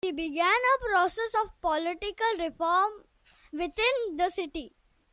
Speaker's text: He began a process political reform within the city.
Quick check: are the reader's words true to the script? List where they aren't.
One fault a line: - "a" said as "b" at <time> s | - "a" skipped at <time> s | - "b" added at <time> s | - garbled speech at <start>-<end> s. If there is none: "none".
- "of" added at 1.4 s